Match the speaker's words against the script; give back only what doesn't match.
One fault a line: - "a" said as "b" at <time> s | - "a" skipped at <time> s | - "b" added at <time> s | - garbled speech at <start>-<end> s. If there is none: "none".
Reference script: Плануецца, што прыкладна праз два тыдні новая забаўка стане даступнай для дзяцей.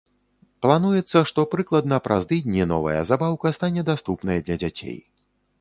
- "два" skipped at 2.3 s